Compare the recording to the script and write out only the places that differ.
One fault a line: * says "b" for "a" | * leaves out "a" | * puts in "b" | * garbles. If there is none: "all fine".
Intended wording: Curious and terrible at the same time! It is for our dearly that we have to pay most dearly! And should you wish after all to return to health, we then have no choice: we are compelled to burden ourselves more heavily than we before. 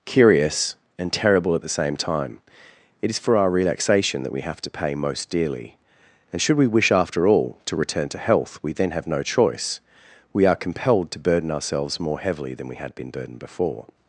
* says "relaxation" for "dearly"
* says "we" for "you"
* puts in "had been burdened"